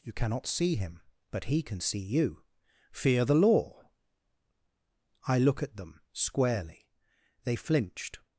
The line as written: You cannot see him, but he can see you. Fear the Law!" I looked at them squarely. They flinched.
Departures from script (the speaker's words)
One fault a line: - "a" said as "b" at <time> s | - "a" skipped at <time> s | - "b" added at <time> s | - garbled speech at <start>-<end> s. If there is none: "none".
- "looked" said as "look" at 5.4 s